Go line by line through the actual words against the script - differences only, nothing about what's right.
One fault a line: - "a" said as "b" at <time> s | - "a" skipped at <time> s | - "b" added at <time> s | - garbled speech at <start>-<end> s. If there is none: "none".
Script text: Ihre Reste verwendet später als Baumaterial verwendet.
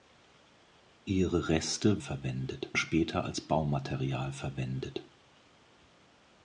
none